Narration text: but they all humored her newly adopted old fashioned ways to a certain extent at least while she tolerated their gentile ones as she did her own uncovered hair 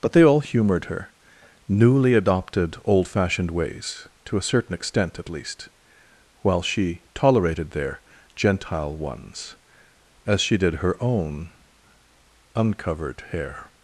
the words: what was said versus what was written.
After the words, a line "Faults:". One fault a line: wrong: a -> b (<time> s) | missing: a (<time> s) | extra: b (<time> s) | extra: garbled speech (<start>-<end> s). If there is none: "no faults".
but they all humored her newly adopted old fashioned ways to a certain extent at least while she tolerated their gentile ones as she did her own uncovered hair
Faults:
no faults